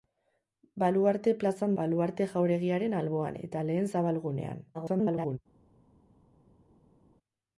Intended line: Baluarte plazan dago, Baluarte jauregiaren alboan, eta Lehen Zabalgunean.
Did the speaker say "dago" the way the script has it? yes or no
no